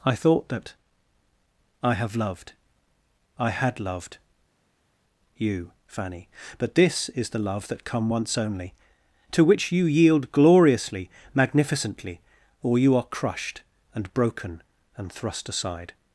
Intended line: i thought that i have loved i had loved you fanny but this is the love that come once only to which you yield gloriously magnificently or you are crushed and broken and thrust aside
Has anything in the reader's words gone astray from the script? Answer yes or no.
no